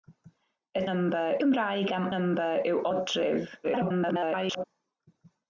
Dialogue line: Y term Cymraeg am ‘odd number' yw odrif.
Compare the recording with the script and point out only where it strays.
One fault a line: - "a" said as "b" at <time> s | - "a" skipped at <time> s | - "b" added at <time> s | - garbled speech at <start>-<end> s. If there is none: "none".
- "term" said as "number" at 0.9 s
- "odd" skipped at 2.1 s
- garbled speech at 3.6-4.6 s